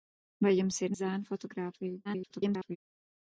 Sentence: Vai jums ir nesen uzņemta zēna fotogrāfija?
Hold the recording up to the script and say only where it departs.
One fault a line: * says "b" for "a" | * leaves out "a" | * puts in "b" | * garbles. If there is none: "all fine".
* leaves out "nesen uzņemta"
* garbles